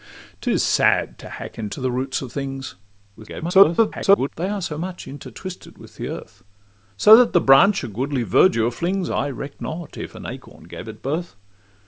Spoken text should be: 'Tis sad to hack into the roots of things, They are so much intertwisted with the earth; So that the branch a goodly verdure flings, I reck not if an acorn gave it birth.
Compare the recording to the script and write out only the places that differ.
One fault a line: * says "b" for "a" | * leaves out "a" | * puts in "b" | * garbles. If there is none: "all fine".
* garbles